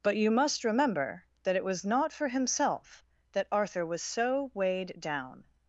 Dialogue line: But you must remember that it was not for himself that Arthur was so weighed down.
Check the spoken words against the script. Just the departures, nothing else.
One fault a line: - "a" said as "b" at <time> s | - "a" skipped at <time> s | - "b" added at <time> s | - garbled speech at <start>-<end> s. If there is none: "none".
none